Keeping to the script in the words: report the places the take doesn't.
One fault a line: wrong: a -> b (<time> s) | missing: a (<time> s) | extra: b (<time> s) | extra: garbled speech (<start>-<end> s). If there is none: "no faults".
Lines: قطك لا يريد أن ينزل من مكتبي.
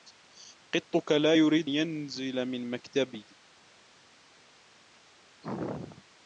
missing: أن (1.7 s)